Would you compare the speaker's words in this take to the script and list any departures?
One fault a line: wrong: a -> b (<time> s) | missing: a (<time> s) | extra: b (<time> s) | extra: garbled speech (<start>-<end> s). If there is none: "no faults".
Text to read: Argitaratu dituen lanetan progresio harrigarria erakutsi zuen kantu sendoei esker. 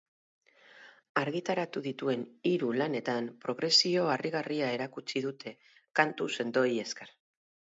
extra: hiru (2.5 s)
wrong: zuen -> dute (5.3 s)